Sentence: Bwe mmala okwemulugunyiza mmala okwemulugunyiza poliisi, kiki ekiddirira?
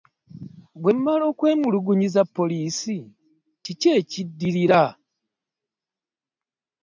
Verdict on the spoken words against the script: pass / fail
fail